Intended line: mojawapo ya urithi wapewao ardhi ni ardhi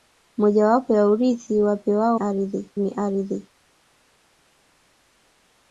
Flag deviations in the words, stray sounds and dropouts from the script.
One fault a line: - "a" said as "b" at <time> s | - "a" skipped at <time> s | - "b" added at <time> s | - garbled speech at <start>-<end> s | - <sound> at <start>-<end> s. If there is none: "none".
none